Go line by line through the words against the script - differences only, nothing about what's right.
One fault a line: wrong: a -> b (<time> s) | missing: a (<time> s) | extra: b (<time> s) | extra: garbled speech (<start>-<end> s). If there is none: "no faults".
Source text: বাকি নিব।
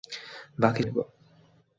no faults